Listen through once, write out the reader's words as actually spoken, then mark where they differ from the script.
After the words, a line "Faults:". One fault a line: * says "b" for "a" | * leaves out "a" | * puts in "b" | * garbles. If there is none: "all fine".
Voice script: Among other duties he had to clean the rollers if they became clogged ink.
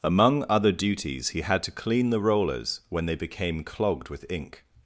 Among other duties he had to clean the rollers when they became clogged with ink.
Faults:
* says "when" for "if"
* puts in "with"